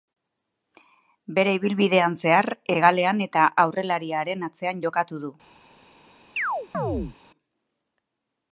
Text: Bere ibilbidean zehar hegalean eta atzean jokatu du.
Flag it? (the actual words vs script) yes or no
yes